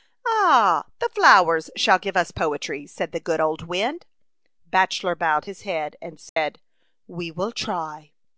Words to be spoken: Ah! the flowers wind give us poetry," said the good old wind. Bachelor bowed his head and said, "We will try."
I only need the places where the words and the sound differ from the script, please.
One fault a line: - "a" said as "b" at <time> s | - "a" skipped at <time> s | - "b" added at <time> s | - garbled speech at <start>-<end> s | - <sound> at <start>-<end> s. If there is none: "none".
- "wind" said as "shall" at 1.8 s
- dropout at 6.3-6.4 s